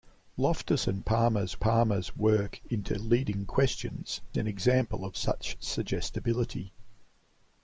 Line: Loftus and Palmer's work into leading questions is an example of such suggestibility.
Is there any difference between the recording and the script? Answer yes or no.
yes